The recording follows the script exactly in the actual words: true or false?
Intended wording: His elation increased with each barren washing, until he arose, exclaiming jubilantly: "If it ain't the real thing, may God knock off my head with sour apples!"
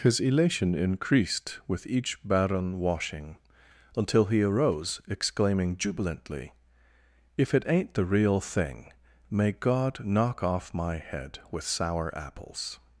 true